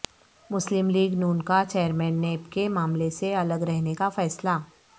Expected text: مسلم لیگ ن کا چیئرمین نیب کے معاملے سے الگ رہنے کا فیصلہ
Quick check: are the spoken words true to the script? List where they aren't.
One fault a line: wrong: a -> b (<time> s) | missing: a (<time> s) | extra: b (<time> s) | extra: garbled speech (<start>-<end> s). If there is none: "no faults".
no faults